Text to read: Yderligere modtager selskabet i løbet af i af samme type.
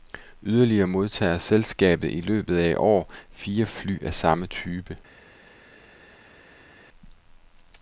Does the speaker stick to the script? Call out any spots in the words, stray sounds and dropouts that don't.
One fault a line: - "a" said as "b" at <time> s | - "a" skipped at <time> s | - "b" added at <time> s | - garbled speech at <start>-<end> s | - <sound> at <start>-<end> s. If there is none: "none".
- "år fire fly" added at 2.8 s